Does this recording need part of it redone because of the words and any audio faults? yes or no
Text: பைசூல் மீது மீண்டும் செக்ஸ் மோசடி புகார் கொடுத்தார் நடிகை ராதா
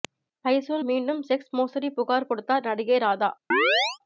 yes